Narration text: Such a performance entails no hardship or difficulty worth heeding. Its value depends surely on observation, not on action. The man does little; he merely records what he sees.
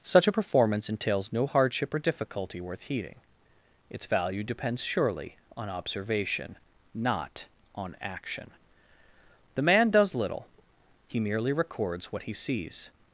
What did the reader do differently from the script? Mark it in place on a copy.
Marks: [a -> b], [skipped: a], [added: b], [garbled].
Such a performance entails no hardship or difficulty worth heeding. Its value depends surely on observation, not on action. The man does little; he merely records what he sees.